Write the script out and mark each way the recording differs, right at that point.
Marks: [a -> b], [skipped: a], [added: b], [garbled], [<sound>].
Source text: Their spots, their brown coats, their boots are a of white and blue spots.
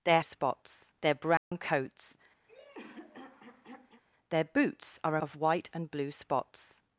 Their spots, their brown [dropout] coats, [throat clearing] their boots are a of white and blue spots.